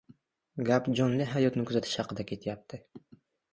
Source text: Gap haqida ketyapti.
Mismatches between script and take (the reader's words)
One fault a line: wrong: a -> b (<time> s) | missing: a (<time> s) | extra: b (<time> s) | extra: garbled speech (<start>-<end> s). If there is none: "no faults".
extra: jonli hayotni kuzatish (1.0 s)